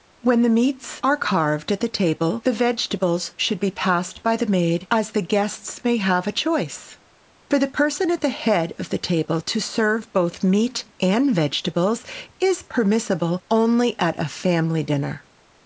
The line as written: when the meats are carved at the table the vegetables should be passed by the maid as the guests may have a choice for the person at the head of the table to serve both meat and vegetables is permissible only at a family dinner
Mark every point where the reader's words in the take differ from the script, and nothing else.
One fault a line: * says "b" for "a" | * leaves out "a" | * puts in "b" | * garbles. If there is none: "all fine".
all fine